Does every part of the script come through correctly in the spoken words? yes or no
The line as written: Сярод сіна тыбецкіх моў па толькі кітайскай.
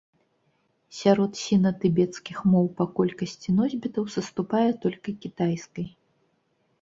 no